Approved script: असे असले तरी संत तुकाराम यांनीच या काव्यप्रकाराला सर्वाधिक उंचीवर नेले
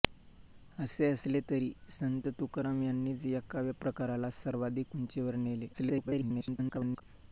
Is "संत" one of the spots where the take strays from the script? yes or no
no